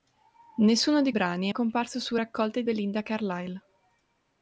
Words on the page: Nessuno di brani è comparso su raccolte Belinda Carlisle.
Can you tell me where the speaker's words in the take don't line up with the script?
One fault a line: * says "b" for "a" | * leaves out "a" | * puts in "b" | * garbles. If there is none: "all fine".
all fine